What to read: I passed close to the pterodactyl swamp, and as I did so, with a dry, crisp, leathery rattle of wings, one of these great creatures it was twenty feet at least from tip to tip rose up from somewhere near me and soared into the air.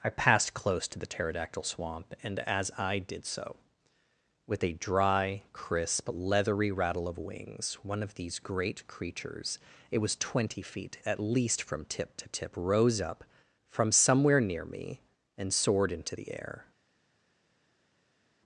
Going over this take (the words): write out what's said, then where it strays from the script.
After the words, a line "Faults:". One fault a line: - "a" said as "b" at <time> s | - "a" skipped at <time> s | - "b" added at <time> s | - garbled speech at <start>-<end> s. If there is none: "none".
I passed close to the pterodactyl swamp, and as I did so, with a dry, crisp, leathery rattle of wings, one of these great creatures it was twenty feet at least from tip to tip rose up from somewhere near me and soared into the air.
Faults:
none